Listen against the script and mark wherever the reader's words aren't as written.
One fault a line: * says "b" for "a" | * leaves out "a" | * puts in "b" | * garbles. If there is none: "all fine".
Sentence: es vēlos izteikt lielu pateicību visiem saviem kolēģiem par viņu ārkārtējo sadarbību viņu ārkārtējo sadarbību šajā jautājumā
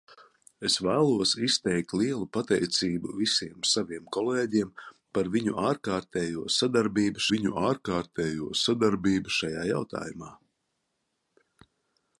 all fine